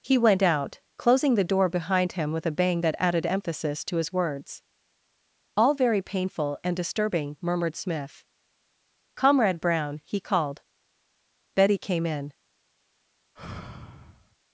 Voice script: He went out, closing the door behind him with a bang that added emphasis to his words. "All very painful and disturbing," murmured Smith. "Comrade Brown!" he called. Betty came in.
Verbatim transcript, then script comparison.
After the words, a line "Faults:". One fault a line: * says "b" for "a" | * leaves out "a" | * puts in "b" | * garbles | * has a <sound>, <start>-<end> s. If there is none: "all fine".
He went out, closing the door behind him with a bang that added emphasis to his words. "All very painful and disturbing," murmured Smith. "Comrade Brown!" he called. Betty came in.
Faults:
* has a sigh, 13.4-14.4 s